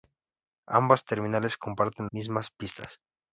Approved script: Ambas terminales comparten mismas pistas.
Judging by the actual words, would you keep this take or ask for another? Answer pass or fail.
pass